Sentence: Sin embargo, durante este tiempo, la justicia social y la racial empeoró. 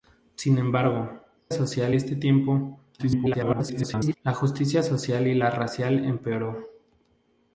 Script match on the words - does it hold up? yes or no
no